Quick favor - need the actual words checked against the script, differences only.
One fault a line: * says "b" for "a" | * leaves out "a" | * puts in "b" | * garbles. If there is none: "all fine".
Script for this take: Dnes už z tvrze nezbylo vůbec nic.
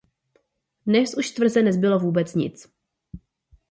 all fine